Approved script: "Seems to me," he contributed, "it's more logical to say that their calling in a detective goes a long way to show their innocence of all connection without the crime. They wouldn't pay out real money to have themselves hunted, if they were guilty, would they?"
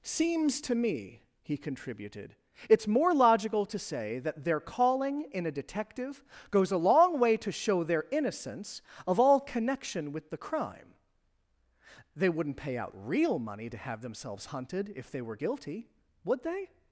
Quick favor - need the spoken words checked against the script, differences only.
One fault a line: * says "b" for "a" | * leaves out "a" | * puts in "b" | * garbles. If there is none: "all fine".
* says "with" for "without"